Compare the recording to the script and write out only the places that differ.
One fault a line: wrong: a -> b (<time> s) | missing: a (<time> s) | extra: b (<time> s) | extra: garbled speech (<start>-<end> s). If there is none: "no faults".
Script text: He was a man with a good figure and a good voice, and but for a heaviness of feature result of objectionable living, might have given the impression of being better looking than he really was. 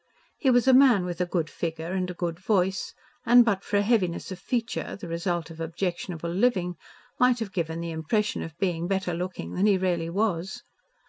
extra: the (5.0 s)